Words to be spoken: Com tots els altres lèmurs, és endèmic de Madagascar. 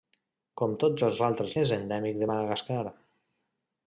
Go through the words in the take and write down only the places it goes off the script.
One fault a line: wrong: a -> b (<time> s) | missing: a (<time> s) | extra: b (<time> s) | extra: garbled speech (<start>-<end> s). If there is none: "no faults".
missing: lèmurs (1.5 s)